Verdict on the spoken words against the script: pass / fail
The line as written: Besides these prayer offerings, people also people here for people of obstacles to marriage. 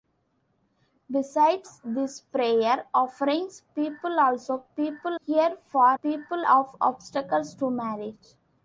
pass